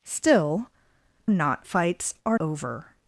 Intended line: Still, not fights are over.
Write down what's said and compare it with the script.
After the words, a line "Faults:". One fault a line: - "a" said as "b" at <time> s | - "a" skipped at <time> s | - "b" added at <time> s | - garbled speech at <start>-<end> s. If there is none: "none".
Still, not fights are over.
Faults:
none